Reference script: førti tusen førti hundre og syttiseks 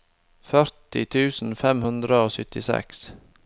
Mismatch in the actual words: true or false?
true